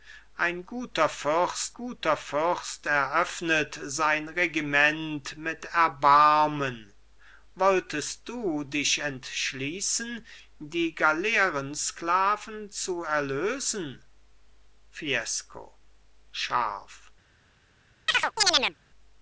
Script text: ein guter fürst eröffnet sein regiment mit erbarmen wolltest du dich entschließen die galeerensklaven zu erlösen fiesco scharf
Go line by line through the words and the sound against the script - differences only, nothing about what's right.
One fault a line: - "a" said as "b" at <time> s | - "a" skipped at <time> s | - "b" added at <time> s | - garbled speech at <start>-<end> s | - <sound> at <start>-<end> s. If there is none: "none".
- "guter fürst" added at 1.7 s
- chirp at 18.1-18.8 s